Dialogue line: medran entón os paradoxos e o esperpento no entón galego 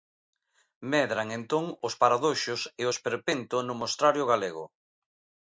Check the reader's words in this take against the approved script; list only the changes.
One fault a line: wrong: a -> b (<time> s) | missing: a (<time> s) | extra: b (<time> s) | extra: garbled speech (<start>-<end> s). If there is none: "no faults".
wrong: entón -> mostrario (3.8 s)